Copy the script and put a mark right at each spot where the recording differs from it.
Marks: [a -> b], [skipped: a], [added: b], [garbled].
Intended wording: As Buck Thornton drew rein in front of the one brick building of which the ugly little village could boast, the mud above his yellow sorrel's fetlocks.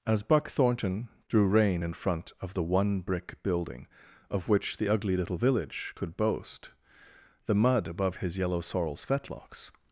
As Buck Thornton drew rein in front of the one brick building of which the ugly little village could boast, the mud above his yellow sorrel's fetlocks.